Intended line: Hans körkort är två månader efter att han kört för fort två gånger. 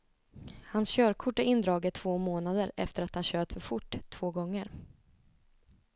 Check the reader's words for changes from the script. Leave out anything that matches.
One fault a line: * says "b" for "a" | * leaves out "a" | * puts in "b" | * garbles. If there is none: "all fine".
* puts in "indraget"